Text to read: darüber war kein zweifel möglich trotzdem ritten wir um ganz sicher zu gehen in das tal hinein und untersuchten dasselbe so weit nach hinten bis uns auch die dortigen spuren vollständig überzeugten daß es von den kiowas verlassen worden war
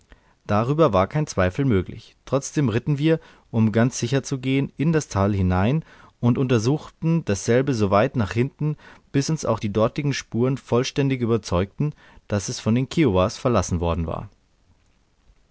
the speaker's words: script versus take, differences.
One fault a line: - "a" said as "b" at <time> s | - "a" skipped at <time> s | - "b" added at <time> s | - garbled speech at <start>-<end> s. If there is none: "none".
none